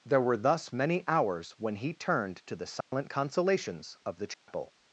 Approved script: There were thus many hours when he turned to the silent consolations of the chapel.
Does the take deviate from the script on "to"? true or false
false